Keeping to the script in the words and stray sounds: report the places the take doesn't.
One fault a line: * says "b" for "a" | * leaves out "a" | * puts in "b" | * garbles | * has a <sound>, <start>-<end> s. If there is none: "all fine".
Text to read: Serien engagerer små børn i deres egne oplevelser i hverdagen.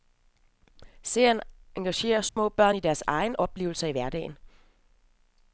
* has a dropout, 2.3-2.4 s